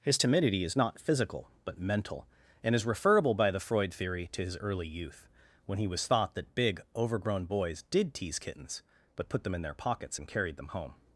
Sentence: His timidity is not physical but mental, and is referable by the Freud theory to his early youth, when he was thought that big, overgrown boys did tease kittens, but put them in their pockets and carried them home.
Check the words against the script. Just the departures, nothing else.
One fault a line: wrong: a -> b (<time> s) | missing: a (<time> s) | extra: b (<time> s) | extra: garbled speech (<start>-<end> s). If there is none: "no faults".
no faults